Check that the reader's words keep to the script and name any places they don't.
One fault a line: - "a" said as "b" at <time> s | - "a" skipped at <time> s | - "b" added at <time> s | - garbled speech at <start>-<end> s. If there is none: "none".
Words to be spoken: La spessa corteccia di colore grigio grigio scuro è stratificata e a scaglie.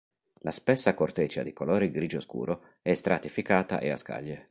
- "grigio" skipped at 2.2 s